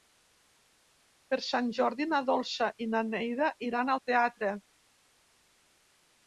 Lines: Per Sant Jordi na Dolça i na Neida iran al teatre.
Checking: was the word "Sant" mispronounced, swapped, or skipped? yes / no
no